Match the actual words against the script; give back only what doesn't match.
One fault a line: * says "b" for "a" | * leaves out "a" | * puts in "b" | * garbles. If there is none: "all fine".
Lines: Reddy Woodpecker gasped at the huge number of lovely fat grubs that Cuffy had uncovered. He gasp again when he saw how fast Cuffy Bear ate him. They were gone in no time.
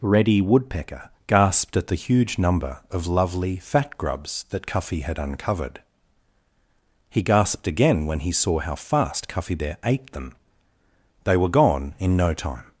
* says "gasped" for "gasp"
* says "them" for "him"